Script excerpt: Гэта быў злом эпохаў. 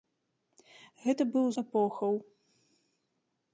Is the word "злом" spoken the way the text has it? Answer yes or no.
no